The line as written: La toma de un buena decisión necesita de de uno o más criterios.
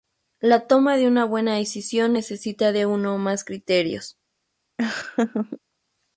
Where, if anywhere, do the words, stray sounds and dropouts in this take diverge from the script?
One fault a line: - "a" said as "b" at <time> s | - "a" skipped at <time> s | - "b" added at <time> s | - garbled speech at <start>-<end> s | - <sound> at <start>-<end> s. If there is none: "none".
- "un" said as "una" at 1.1 s
- "de" skipped at 2.9 s
- laugh at 4.8-5.6 s